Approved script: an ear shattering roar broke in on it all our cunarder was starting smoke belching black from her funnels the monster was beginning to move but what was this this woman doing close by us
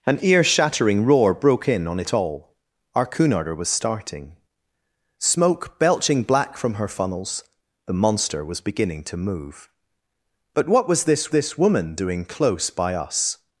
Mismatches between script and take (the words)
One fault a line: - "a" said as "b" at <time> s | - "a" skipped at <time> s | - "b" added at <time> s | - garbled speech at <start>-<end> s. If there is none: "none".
none